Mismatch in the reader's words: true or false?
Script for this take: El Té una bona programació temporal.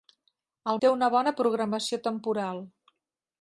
false